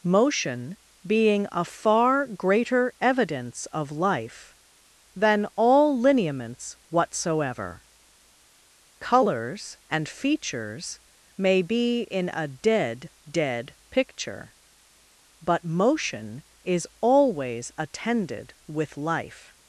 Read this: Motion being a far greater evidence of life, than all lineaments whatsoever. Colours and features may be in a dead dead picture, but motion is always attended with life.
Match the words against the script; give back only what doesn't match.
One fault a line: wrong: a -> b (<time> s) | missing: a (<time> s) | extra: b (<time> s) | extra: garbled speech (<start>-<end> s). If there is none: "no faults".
no faults